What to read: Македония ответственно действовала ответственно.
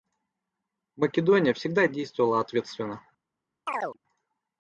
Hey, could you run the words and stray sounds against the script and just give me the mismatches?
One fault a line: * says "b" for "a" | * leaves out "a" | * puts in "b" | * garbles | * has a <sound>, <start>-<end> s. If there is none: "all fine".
* says "всегда" for "ответственно"
* has a chirp, 3.7-4.0 s